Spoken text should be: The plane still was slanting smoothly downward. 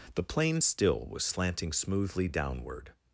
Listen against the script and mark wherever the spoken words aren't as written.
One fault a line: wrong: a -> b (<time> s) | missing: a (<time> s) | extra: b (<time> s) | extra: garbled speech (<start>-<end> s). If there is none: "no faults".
no faults